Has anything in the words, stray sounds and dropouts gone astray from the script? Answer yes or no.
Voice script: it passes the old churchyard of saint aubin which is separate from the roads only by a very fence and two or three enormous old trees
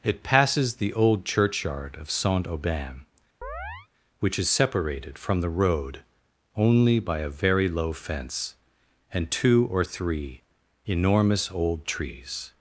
yes